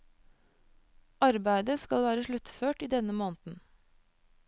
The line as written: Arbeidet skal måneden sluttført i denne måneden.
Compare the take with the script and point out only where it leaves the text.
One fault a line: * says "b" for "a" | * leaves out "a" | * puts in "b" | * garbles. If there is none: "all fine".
* says "være" for "måneden"